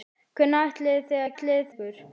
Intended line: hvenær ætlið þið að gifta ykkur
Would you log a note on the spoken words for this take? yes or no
yes